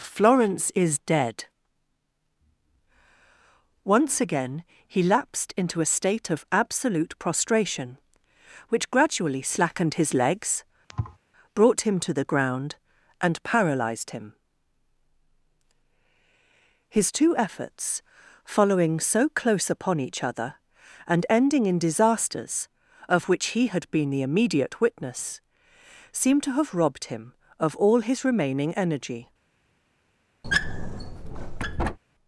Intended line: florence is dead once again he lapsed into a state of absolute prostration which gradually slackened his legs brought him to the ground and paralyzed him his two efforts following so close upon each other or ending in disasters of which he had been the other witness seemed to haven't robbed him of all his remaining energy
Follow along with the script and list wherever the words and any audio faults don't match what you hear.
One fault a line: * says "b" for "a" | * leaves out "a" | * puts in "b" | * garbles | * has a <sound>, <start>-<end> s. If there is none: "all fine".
* has a thud, 10.9-11.2 s
* says "and" for "or"
* says "immediate" for "other"
* says "have" for "haven't"
* has a squeak, 30.4-32.0 s